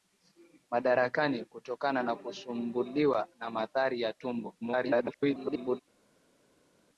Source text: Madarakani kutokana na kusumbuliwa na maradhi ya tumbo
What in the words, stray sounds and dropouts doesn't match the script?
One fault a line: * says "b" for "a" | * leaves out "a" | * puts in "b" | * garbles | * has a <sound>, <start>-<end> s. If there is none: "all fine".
* garbles